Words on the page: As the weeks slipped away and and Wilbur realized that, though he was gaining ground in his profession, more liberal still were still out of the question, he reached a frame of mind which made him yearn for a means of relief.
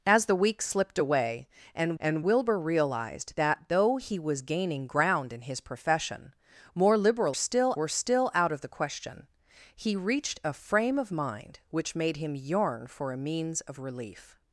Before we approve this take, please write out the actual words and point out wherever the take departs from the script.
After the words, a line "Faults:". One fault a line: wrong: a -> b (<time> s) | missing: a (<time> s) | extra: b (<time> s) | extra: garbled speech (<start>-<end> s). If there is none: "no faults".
As the weeks slipped away and and Wilbur realized that, though he was gaining ground in his profession, more liberal still were still out of the question, he reached a frame of mind which made him yearn for a means of relief.
Faults:
no faults